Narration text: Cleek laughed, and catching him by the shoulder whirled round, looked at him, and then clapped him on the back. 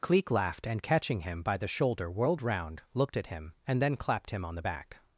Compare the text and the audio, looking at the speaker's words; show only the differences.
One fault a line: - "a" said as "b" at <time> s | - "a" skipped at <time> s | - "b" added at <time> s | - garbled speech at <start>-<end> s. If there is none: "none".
none